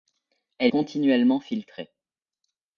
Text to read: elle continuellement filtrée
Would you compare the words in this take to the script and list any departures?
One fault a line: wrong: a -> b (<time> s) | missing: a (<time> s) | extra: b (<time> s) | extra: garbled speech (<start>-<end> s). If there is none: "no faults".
no faults